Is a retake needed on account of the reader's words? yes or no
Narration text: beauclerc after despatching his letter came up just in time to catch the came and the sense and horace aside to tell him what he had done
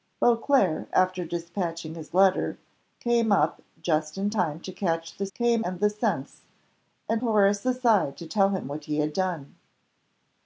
no